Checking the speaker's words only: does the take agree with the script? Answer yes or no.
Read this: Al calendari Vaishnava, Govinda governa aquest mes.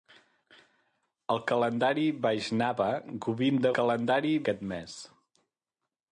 no